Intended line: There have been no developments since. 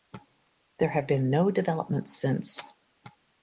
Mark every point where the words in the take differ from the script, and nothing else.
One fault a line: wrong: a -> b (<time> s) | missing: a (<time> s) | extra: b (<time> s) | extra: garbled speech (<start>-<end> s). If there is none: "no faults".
no faults